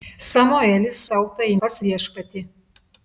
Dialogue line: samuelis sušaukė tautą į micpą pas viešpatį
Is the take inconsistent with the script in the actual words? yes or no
yes